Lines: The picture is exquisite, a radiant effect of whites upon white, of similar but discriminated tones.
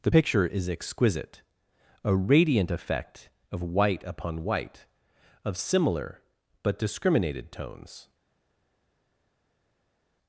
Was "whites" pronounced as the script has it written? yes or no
no